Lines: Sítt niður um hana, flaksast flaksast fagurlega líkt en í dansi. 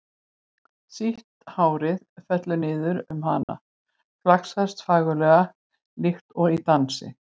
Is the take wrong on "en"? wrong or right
wrong